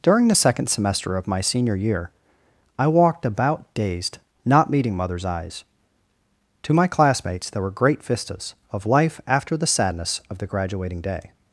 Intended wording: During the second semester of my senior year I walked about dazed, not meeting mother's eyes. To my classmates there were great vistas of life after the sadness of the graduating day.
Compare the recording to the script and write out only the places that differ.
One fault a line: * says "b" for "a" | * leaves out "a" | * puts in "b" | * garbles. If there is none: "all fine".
all fine